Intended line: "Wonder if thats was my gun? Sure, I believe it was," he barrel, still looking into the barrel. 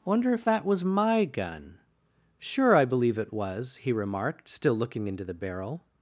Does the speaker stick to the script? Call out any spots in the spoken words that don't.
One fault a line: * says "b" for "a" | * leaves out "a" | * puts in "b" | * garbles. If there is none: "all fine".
* says "that" for "thats"
* says "remarked" for "barrel"